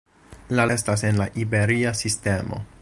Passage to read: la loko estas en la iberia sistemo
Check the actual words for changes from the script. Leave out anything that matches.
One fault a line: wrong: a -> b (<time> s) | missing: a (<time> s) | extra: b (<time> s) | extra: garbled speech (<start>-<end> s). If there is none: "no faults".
missing: loko (0.6 s)